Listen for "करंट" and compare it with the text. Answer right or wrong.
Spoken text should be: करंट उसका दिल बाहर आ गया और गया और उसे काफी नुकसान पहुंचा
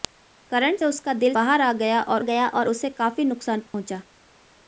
right